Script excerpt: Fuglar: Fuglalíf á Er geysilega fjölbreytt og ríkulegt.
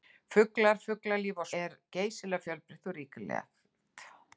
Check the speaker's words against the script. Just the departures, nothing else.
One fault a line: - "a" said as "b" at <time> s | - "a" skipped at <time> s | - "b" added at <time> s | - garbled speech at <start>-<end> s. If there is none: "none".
none